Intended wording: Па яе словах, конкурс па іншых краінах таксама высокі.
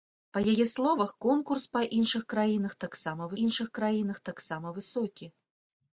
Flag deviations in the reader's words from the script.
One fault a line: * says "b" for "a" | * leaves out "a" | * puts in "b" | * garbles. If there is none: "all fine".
* puts in "іншых краінах таксама"